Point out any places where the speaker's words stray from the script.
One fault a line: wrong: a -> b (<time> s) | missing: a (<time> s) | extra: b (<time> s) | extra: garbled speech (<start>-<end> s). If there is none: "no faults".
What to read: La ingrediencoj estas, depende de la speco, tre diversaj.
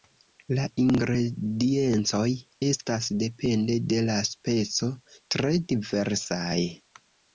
no faults